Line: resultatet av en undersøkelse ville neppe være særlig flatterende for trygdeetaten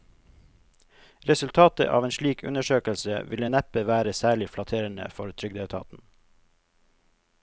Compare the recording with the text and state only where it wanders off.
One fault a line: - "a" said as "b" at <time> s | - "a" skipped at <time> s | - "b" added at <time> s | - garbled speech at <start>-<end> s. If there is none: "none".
- "slik" added at 2.1 s